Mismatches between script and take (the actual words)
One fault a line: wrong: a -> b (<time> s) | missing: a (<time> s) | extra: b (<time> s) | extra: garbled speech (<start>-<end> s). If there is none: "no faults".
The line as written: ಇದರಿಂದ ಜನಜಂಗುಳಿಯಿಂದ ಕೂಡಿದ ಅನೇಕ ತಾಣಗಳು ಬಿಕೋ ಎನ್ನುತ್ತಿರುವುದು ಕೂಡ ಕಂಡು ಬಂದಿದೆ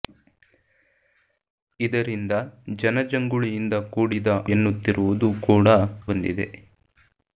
missing: ಅನೇಕ ತಾಣಗಳು ಬಿಕೋ (4.3 s)
missing: ಕಂಡು (5.7 s)